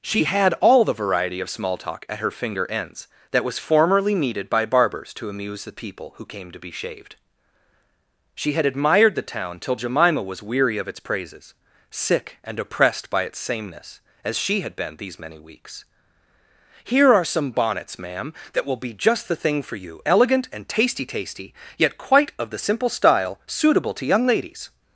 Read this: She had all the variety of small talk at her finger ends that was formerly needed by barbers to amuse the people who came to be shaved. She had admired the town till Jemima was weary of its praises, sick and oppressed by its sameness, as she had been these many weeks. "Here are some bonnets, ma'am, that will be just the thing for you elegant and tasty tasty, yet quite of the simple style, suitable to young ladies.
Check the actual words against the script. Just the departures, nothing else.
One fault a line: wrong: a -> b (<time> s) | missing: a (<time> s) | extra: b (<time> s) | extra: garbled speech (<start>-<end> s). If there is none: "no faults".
no faults